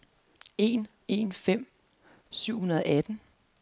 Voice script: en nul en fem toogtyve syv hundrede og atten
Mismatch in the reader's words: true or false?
true